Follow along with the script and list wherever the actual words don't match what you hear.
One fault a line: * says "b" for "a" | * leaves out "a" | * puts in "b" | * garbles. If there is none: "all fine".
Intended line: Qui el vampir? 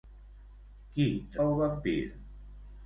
all fine